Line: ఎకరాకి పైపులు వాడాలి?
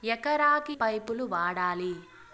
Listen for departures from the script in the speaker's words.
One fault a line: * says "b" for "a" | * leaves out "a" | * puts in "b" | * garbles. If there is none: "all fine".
all fine